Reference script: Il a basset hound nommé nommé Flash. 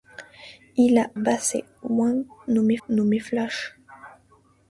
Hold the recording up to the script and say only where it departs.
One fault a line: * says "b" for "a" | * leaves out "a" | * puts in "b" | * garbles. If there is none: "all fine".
all fine